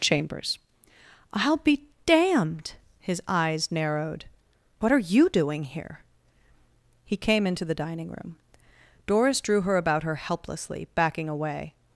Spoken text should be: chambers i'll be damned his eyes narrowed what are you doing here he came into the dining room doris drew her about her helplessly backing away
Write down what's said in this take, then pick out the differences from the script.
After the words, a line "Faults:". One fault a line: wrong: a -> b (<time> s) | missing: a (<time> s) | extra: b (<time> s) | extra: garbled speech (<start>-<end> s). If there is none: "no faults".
chambers i'll be damned his eyes narrowed what are you doing here he came into the dining room doris drew her about her helplessly backing away
Faults:
no faults